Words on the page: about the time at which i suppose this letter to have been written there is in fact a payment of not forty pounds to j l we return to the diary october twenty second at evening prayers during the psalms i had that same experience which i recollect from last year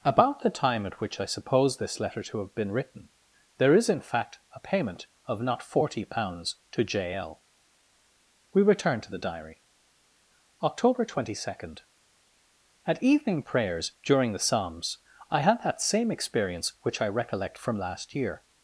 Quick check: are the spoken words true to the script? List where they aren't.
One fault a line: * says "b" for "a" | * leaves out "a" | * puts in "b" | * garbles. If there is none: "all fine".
all fine